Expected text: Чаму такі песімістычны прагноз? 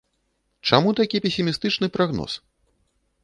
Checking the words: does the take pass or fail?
pass